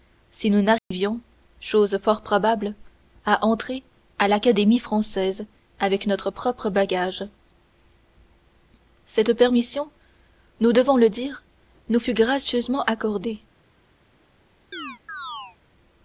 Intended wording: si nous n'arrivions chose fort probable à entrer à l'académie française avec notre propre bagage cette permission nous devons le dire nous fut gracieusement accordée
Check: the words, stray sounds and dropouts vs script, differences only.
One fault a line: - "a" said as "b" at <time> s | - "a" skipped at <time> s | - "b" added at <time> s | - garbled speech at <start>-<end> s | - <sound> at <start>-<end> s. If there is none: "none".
- dropout at 0.8-0.9 s
- chirp at 14.7-15.6 s